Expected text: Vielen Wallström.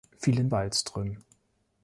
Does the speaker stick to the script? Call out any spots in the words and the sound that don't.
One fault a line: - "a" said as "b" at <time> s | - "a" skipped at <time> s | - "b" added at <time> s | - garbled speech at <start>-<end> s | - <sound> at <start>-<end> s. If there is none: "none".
none